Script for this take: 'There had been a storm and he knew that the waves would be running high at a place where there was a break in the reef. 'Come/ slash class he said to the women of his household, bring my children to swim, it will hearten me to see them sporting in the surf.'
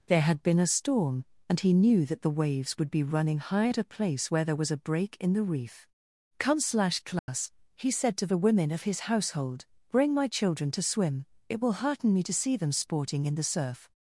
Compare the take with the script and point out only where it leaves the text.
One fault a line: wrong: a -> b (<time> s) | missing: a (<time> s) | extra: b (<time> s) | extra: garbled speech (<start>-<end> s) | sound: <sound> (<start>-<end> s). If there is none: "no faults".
sound: dropout (7.2-7.3 s)